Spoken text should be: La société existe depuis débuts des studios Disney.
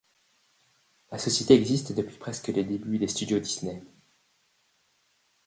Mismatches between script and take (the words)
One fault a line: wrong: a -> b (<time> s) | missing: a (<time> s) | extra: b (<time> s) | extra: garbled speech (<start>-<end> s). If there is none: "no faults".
extra: presque les (2.2 s)